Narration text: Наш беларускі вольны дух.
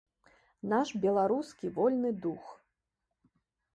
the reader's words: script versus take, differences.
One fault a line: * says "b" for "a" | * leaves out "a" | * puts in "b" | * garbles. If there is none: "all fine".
all fine